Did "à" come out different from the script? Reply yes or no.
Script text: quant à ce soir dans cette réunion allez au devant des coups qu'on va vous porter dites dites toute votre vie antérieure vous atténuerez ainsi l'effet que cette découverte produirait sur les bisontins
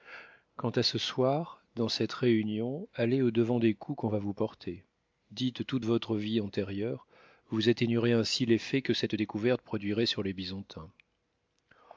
no